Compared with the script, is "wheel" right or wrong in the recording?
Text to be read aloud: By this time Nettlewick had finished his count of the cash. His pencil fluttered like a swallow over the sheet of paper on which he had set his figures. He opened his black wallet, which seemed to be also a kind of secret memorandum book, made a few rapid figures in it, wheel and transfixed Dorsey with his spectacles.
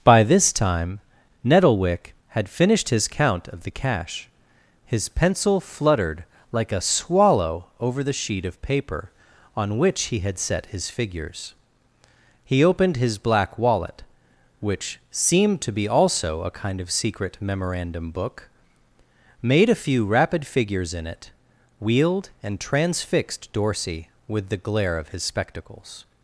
wrong